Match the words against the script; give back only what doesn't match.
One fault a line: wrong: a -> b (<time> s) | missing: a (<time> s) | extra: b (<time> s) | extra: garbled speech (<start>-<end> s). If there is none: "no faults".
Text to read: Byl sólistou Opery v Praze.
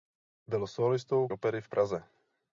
no faults